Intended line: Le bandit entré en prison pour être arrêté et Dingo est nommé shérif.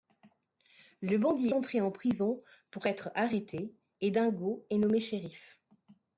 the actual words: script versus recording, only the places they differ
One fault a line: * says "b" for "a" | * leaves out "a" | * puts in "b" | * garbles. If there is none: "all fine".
all fine